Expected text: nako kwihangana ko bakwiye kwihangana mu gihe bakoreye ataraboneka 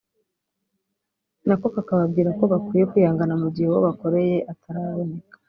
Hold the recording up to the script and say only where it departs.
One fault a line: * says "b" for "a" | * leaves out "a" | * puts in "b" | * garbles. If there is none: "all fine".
* says "kakababwira" for "kwihangana"
* puts in "uwo"